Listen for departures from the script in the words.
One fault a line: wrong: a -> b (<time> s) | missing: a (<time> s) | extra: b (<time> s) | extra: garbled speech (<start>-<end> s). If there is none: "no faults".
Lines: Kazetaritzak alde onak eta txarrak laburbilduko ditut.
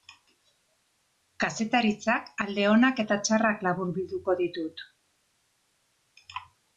no faults